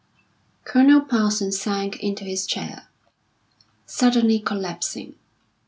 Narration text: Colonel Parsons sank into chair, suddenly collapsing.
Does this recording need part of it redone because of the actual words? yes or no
yes